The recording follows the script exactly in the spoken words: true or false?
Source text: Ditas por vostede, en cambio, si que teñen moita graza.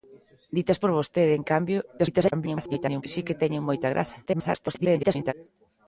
false